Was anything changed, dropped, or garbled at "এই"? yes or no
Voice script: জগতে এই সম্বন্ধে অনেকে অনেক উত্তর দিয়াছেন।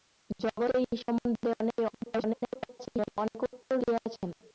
no